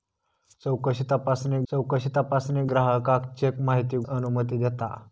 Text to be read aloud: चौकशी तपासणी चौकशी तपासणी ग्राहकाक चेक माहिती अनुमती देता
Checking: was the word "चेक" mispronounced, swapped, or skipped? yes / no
no